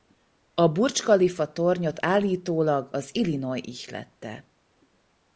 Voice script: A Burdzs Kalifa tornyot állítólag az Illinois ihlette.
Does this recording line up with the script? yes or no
yes